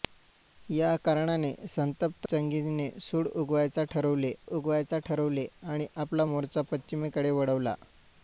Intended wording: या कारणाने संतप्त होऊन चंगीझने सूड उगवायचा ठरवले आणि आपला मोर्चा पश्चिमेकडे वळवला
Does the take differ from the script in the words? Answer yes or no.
yes